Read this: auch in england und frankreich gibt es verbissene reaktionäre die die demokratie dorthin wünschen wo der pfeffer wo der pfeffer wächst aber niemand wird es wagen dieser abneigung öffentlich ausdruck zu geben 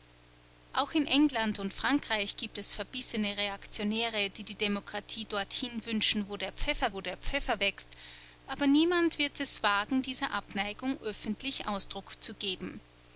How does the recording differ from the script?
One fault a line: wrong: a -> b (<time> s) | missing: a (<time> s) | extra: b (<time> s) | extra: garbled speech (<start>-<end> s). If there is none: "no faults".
no faults